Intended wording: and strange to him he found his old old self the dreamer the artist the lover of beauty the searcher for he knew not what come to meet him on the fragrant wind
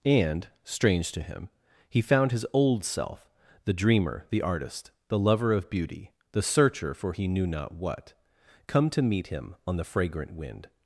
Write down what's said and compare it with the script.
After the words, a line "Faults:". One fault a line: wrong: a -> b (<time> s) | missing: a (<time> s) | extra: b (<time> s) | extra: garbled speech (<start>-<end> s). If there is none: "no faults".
and strange to him he found his old self the dreamer the artist the lover of beauty the searcher for he knew not what come to meet him on the fragrant wind
Faults:
missing: old (2.8 s)